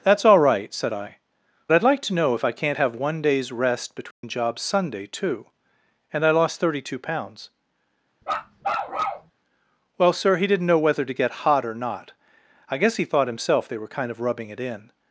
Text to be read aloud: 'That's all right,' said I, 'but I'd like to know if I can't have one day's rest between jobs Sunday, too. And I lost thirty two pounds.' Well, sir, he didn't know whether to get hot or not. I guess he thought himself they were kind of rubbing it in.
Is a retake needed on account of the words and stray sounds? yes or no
yes